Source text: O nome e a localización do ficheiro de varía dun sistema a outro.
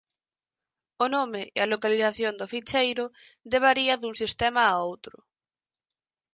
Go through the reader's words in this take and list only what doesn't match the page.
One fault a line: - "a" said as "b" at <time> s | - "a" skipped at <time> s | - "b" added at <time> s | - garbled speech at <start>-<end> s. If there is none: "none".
none